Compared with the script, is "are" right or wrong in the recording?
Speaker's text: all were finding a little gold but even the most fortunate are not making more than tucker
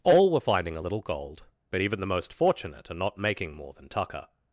right